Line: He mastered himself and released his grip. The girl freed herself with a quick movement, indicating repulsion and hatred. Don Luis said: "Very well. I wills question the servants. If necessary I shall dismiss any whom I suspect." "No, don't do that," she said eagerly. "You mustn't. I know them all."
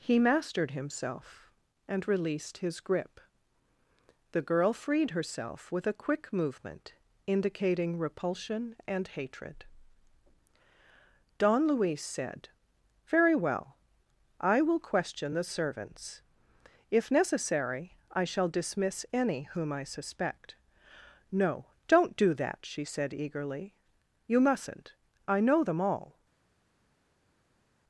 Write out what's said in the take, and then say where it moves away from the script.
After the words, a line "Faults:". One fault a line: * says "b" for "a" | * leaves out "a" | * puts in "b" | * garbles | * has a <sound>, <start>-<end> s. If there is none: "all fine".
He mastered himself and released his grip. The girl freed herself with a quick movement, indicating repulsion and hatred. Don Luis said: "Very well. I will question the servants. If necessary I shall dismiss any whom I suspect." "No, don't do that," she said eagerly. "You mustn't. I know them all."
Faults:
* says "will" for "wills"